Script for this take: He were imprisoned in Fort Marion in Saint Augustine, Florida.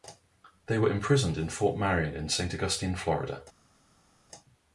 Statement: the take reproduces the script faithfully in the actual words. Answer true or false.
false